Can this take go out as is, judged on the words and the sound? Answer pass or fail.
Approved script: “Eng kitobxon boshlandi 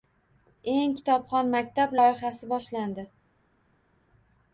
fail